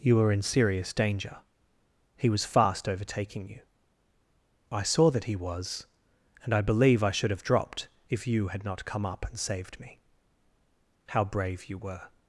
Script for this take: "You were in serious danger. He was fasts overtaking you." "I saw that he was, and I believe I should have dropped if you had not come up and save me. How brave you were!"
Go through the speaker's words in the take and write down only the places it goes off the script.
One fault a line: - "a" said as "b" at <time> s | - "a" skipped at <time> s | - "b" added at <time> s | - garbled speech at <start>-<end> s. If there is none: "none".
- "fasts" said as "fast" at 2.4 s
- "save" said as "saved" at 9.4 s